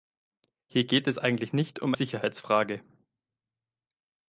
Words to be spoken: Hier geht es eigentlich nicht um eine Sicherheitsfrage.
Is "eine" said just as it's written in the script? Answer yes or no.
no